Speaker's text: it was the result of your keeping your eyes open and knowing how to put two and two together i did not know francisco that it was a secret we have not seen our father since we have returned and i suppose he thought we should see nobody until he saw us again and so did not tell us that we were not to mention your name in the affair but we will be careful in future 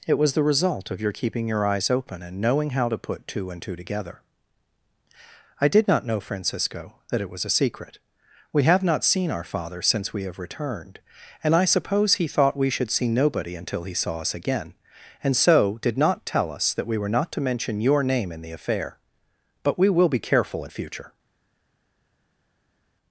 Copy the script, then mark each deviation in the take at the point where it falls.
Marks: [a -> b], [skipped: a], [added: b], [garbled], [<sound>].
it was the result of your keeping your eyes open and knowing how to put two and two together i did not know francisco that it was a secret we have not seen our father since we have returned and i suppose he thought we should see nobody until he saw us again and so did not tell us that we were not to mention your name in the affair but we will be careful in future